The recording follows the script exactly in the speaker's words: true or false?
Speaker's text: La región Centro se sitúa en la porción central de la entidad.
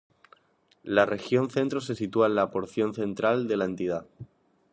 true